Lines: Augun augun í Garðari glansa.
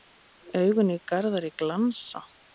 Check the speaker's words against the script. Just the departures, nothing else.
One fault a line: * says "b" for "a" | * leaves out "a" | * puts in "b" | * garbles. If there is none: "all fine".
* leaves out "augun"